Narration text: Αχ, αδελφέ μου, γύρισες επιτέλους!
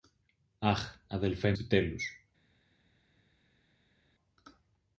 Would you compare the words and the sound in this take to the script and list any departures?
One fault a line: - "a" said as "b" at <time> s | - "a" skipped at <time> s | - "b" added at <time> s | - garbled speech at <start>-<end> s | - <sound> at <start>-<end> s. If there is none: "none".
- "μου γύρισες" skipped at 1.5 s